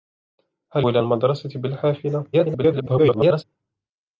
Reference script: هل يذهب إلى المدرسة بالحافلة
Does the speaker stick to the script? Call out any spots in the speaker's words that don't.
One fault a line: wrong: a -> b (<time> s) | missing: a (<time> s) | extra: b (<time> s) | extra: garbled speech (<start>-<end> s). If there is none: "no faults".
missing: يذهب (0.8 s)
extra: garbled speech (2.3-3.4 s)